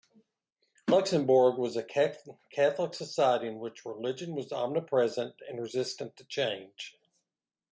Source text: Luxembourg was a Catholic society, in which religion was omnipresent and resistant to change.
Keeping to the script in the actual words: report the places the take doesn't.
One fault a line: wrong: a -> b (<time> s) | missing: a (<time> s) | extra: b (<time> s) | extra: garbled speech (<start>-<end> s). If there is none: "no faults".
no faults